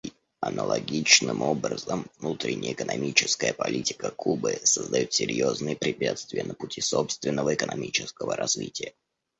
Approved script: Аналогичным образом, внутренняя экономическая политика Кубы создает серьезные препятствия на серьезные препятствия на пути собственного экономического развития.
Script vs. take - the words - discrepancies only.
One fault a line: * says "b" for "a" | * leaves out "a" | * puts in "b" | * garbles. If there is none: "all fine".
* leaves out "серьезные препятствия на"